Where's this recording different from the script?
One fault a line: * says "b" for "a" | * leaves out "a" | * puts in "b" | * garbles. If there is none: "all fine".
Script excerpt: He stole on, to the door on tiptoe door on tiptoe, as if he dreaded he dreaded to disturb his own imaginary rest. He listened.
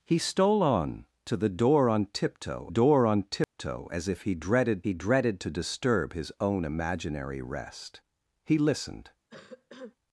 all fine